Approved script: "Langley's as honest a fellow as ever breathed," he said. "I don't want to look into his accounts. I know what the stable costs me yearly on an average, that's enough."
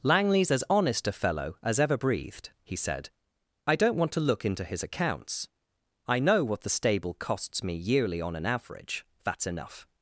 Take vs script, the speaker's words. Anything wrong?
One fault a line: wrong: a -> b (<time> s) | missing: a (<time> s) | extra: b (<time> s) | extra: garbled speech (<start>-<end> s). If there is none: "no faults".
no faults